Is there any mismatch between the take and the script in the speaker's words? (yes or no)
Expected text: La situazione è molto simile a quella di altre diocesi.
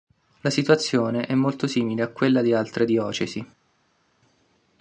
no